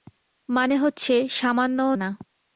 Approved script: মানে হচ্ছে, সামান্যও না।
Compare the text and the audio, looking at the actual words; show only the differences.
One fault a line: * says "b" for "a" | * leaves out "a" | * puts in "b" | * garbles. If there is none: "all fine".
all fine